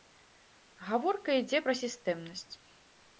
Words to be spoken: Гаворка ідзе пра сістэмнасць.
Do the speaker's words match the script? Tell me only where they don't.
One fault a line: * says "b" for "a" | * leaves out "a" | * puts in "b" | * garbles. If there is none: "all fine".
all fine